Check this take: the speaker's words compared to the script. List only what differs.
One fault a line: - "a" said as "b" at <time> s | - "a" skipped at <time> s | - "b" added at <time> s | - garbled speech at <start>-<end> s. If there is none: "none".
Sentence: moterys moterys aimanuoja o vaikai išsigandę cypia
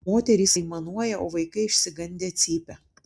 - "moterys" skipped at 0.6 s